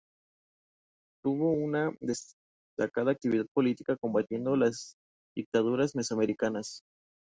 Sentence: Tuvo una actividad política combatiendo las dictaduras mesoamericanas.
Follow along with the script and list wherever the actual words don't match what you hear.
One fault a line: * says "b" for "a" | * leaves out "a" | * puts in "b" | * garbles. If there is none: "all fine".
* puts in "destacada"